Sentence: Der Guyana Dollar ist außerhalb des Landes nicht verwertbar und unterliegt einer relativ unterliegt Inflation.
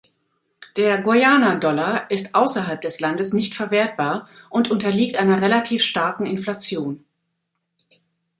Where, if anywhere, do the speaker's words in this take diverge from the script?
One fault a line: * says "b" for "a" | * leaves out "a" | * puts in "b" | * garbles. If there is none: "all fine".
* says "starken" for "unterliegt"